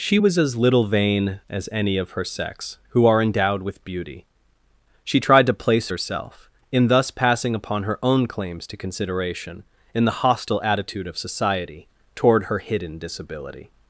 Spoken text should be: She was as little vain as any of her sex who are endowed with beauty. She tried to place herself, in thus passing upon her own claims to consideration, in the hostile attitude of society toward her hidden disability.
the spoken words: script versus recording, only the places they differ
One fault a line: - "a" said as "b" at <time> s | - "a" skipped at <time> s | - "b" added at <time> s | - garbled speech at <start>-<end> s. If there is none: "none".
none